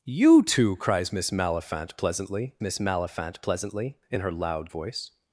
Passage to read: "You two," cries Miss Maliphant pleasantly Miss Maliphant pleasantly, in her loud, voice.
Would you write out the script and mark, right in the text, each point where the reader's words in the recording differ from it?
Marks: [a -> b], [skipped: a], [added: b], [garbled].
"You two," cries Miss Maliphant pleasantly Miss Maliphant pleasantly, in her loud, voice.